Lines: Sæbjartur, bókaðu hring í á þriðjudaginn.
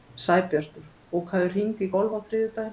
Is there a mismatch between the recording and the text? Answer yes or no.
yes